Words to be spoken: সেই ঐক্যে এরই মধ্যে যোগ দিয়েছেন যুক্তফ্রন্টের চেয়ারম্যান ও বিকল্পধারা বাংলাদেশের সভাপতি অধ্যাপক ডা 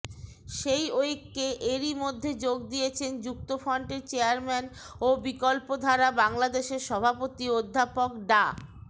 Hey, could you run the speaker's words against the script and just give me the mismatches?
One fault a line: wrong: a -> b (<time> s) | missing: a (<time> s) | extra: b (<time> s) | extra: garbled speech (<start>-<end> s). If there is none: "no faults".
no faults